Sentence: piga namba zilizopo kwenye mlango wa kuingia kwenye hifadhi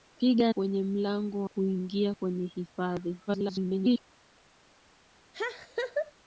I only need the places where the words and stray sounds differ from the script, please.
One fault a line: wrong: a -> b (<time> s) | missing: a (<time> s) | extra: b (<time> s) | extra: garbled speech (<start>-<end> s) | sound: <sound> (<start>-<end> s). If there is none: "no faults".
missing: namba zilizopo (0.5 s)
missing: wa (1.4 s)
extra: garbled speech (3.3-4.0 s)
sound: laugh (5.3-6.1 s)